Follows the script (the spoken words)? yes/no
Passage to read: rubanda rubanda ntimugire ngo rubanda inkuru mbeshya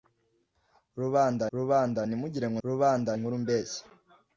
yes